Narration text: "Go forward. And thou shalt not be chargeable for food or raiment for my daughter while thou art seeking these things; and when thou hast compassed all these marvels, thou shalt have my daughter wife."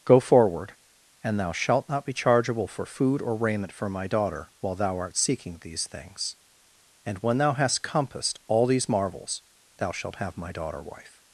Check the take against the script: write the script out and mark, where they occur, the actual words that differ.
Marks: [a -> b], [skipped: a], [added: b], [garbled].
"Go forward. And thou shalt not be chargeable for food or raiment for my daughter while thou art seeking these things; and when thou hast compassed all these marvels, thou shalt have my daughter wife."